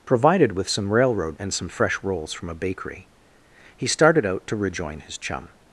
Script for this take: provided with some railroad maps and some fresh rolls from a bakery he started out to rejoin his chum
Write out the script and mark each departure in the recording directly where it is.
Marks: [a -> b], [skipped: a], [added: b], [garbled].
provided with some railroad [skipped: maps] and some fresh rolls from a bakery he started out to rejoin his chum